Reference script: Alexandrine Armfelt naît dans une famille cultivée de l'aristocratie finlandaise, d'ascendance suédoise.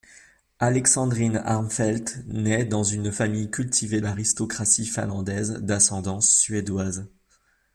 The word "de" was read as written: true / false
false